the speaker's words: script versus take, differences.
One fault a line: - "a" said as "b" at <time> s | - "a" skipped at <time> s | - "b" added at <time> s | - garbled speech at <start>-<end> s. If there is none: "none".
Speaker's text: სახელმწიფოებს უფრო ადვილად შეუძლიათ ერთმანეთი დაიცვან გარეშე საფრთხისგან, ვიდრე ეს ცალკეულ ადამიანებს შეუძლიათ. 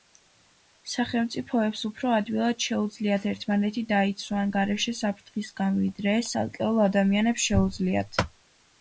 none